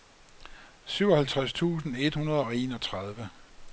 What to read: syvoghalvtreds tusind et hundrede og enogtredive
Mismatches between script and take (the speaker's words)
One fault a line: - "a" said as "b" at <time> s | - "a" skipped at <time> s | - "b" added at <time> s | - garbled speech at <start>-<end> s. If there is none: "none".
none